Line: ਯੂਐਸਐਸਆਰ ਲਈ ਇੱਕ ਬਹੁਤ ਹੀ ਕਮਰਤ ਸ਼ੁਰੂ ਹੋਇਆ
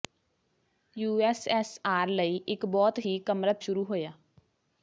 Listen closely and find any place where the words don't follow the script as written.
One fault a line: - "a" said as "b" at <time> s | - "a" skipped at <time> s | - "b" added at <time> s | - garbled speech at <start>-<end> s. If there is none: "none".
none